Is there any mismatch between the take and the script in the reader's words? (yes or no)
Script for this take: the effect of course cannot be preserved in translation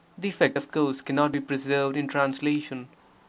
no